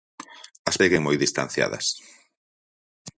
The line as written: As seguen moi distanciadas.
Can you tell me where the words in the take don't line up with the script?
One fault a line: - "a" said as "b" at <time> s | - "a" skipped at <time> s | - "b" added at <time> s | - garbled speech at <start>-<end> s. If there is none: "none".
none